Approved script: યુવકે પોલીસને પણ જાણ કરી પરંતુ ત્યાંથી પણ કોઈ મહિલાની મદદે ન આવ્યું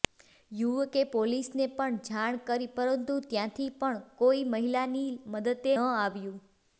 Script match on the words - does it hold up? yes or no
no